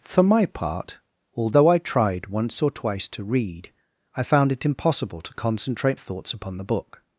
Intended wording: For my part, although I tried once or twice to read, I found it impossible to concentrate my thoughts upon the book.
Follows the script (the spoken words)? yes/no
no